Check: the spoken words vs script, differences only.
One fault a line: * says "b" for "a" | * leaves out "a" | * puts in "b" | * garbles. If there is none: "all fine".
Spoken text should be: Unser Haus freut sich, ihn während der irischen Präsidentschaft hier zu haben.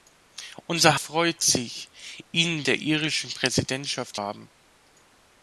* leaves out "Haus"
* leaves out "während"
* leaves out "hier zu"